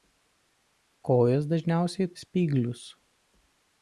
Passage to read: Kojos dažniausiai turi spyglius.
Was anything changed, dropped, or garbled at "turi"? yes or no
yes